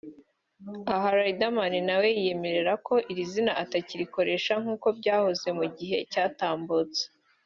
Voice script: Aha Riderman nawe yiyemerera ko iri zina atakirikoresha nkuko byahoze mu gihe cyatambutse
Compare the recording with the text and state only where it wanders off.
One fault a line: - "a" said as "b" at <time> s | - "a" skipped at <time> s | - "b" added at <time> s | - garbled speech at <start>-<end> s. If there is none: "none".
none